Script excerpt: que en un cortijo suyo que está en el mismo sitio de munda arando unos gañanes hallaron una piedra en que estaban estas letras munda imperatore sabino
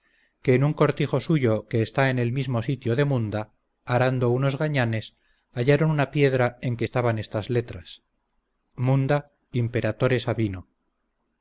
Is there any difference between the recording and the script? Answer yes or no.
no